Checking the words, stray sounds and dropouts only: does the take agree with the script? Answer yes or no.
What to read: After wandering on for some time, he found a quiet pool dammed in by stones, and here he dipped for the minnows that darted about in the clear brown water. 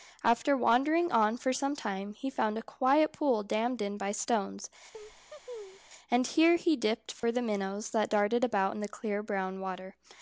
no